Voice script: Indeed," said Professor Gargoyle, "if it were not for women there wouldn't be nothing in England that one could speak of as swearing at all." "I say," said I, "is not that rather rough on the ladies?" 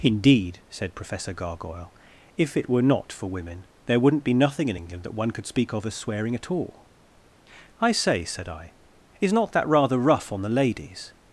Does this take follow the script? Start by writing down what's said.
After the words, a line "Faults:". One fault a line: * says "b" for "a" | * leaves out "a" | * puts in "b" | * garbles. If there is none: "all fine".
Indeed," said Professor Gargoyle, "if it were not for women there wouldn't be nothing in England that one could speak of as swearing at all." "I say," said I, "is not that rather rough on the ladies?"
Faults:
all fine